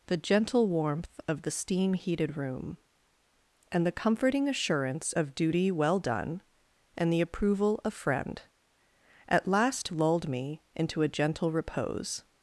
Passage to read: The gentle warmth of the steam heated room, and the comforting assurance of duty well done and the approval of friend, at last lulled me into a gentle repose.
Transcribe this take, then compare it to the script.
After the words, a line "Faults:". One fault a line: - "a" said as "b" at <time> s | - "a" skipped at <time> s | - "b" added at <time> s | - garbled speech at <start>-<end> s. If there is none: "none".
The gentle warmth of the steam heated room, and the comforting assurance of duty well done and the approval of friend, at last lulled me into a gentle repose.
Faults:
none